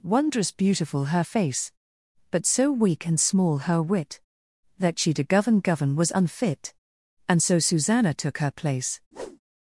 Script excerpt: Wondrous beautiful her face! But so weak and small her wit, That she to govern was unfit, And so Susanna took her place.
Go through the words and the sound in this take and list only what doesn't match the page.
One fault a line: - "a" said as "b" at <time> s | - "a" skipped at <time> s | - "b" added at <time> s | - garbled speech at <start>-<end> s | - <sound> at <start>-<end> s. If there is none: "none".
- "govern" added at 5.6 s
- whoosh at 9.1-9.4 s